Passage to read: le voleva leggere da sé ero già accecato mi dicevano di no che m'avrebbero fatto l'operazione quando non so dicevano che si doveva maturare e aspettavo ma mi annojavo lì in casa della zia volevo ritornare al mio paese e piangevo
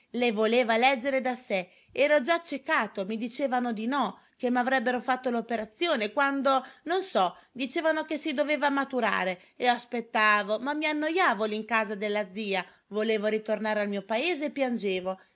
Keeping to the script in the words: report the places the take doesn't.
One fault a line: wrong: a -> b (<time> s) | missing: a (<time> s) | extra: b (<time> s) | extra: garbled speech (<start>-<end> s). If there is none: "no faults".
no faults